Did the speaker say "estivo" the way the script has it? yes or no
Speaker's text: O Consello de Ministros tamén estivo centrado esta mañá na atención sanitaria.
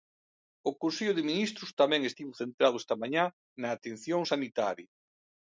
yes